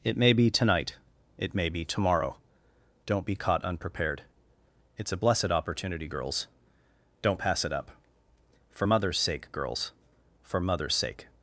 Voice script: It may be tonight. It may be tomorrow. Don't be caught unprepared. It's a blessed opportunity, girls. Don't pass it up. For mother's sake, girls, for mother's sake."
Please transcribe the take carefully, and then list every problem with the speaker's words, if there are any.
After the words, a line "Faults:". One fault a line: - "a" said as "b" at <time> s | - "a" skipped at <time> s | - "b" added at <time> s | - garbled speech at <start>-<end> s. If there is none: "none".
It may be tonight. It may be tomorrow. Don't be caught unprepared. It's a blessed opportunity, girls. Don't pass it up. For mother's sake, girls, for mother's sake."
Faults:
none